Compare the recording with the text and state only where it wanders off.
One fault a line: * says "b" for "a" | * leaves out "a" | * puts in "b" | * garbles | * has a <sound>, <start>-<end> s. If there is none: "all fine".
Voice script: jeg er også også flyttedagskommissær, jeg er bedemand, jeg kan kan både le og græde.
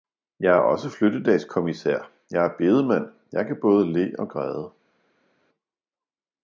* leaves out "også"
* leaves out "kan"